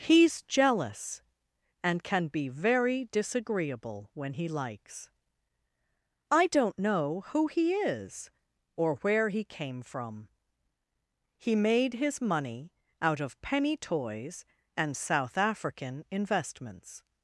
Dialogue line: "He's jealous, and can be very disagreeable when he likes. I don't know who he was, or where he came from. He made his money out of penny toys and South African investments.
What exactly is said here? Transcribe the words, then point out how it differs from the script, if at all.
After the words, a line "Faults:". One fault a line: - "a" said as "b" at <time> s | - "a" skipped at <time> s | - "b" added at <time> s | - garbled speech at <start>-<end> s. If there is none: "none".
"He's jealous, and can be very disagreeable when he likes. I don't know who he is, or where he came from. He made his money out of penny toys and South African investments.
Faults:
- "was" said as "is" at 7.7 s